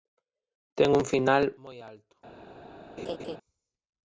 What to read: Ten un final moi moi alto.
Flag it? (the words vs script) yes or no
yes